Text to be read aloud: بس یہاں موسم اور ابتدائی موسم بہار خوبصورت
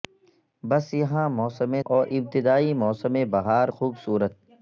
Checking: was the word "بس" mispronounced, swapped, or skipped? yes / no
no